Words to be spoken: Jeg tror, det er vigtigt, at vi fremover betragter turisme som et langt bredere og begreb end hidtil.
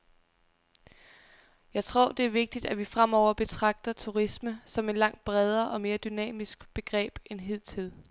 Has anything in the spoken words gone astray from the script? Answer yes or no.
yes